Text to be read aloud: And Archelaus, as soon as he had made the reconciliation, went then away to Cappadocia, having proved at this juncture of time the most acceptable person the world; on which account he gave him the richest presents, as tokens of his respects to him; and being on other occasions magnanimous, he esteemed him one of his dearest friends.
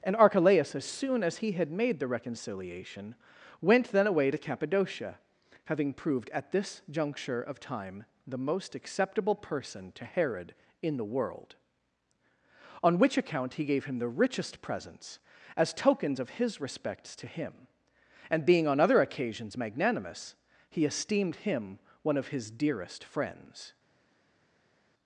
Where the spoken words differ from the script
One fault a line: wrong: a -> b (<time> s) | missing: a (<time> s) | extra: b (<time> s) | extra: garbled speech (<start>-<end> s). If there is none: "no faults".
extra: to Herod in (9.9 s)